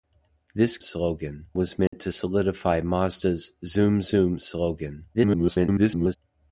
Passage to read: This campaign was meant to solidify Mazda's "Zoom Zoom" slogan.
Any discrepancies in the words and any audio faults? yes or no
yes